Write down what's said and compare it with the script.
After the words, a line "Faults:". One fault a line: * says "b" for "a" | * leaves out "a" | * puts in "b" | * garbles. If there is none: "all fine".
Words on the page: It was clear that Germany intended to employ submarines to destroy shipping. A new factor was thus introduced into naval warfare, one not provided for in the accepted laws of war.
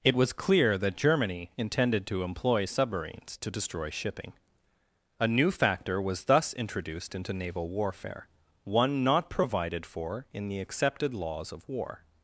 It was clear that Germany intended to employ submarines to destroy shipping. A new factor was thus introduced into naval warfare, one not provided for in the accepted laws of war.
Faults:
all fine